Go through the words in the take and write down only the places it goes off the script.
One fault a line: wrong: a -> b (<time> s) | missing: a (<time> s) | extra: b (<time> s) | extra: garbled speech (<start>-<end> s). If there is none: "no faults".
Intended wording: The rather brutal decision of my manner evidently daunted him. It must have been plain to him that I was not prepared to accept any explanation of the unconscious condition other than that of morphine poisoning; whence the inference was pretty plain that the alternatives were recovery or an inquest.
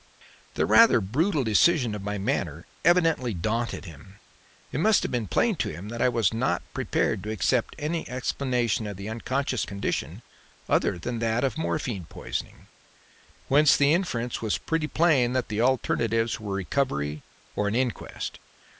no faults